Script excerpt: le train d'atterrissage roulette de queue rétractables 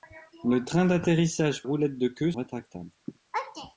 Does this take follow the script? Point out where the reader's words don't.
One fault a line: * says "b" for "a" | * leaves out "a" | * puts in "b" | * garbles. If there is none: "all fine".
all fine